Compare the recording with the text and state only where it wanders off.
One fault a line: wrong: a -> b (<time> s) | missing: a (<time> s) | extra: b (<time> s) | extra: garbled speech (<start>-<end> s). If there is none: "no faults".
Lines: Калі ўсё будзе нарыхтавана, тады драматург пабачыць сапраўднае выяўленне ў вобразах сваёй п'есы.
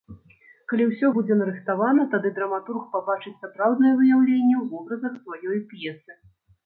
no faults